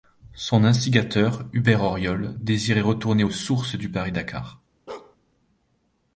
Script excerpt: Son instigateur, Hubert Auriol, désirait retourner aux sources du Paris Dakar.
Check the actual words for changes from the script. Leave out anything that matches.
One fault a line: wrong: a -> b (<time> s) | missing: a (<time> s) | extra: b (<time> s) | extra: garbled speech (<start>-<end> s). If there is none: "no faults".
no faults